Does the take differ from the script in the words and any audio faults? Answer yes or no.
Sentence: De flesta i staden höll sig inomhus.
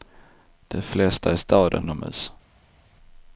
yes